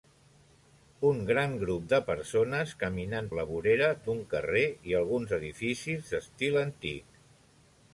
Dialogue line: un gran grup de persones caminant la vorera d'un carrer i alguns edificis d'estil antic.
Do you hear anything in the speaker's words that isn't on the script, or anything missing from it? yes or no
no